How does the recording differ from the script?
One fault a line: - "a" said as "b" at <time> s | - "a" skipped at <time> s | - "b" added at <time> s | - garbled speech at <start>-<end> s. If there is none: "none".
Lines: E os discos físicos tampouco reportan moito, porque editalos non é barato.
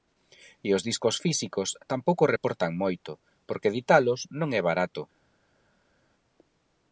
none